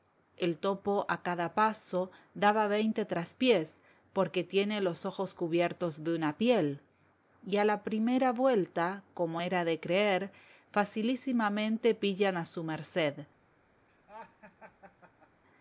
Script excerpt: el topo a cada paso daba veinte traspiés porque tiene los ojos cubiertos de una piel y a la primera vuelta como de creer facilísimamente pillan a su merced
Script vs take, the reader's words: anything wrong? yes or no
yes